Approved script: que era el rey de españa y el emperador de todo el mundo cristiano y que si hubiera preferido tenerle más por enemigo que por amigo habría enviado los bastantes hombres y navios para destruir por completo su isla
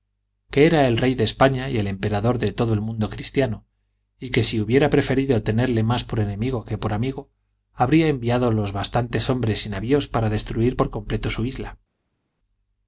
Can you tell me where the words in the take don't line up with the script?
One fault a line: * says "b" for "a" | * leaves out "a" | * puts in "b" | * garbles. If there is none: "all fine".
all fine